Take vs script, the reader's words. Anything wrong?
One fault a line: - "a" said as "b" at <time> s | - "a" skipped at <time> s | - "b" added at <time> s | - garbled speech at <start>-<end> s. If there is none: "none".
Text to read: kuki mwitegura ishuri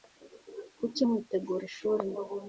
none